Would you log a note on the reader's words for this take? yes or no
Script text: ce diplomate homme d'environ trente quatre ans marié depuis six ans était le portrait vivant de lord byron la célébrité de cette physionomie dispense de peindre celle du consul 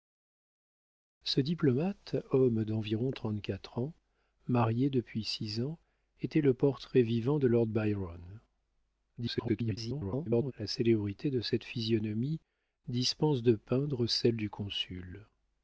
yes